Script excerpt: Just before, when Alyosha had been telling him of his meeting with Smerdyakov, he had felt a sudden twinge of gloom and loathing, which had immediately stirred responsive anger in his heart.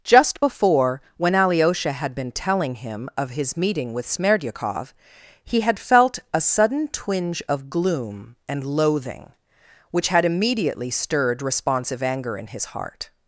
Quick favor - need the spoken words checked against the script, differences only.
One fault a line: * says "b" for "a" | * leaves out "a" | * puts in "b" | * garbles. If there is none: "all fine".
all fine